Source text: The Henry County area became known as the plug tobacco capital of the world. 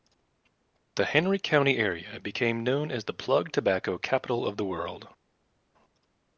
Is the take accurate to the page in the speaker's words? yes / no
yes